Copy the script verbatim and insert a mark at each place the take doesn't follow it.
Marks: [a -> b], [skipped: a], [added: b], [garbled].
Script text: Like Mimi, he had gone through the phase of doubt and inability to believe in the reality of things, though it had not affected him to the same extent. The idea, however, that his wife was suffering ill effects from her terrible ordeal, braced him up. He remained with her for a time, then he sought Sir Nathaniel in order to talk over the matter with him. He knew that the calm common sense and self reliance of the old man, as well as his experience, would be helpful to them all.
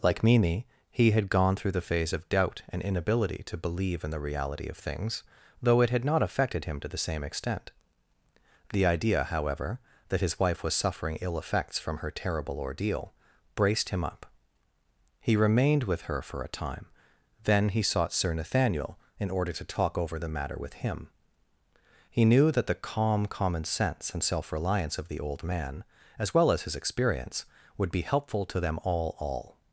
Like Mimi, he had gone through the phase of doubt and inability to believe in the reality of things, though it had not affected him to the same extent. The idea, however, that his wife was suffering ill effects from her terrible ordeal, braced him up. He remained with her for a time, then he sought Sir Nathaniel in order to talk over the matter with him. He knew that the calm common sense and self reliance of the old man, as well as his experience, would be helpful to them all. [added: all]